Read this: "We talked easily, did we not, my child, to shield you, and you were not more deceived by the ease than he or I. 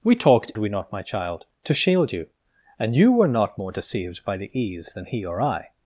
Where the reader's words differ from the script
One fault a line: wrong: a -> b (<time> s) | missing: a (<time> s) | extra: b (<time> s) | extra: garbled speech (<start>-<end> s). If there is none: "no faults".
missing: easily did (0.5 s)